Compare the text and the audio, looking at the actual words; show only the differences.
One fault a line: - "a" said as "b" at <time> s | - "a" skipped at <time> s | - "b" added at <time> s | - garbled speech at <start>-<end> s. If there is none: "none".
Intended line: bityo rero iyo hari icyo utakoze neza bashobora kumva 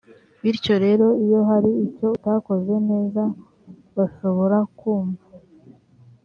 none